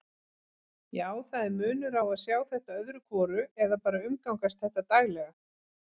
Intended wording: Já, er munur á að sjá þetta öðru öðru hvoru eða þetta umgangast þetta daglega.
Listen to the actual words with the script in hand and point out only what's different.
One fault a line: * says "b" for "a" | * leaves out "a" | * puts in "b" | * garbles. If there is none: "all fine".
* puts in "það"
* leaves out "öðru"
* says "bara" for "þetta"